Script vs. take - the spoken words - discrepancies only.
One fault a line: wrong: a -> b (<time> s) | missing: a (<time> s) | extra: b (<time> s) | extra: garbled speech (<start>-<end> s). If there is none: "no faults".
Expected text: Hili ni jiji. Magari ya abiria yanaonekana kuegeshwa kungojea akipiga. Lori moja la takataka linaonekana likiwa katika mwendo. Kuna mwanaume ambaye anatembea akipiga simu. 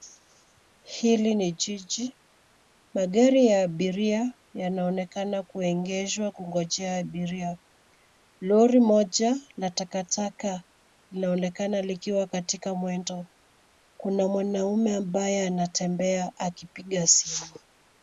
wrong: akipiga -> abiria (7.0 s)